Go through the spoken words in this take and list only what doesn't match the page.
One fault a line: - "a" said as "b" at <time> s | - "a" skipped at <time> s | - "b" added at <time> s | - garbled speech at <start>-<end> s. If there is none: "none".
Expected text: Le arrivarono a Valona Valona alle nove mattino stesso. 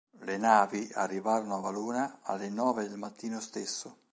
- "navi" added at 0.4 s
- "Valona" skipped at 2.2 s
- "del" added at 2.9 s